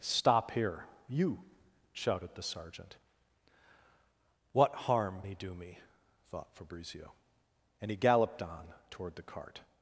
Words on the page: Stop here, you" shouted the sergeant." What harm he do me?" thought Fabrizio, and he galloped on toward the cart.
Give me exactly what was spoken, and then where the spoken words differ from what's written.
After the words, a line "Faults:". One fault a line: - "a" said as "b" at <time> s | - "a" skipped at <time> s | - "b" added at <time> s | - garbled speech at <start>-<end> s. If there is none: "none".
Stop here, you" shouted the sergeant." What harm he do me?" thought Fabrizio, and he galloped on toward the cart.
Faults:
none